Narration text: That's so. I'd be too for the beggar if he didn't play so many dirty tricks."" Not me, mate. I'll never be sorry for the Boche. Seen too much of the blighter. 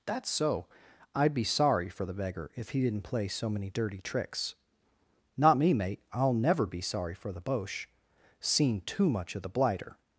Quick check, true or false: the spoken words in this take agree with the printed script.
false